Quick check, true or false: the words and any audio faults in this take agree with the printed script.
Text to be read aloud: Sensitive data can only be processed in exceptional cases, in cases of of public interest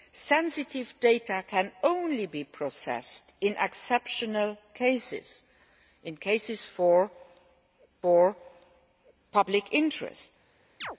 false